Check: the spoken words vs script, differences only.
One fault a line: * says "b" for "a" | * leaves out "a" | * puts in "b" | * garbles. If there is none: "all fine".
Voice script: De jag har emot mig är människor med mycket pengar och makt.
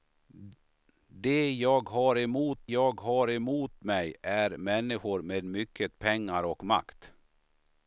* puts in "jag har emot"